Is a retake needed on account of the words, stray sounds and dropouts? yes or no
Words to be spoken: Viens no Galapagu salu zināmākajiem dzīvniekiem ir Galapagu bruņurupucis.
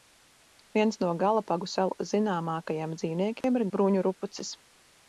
yes